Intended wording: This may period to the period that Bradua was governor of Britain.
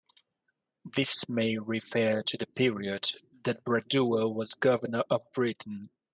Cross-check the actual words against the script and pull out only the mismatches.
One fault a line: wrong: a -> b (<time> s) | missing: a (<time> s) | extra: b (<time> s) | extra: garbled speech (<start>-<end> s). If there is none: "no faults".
wrong: period -> refer (1.6 s)